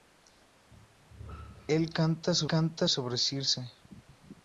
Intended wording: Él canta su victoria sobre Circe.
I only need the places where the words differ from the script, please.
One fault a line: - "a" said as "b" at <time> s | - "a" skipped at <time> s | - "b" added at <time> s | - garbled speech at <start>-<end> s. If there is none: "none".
- "victoria" said as "canta" at 2.5 s